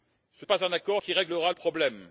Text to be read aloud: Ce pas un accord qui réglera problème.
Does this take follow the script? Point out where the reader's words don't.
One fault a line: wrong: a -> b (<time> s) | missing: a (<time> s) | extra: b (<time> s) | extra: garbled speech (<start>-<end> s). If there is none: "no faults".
no faults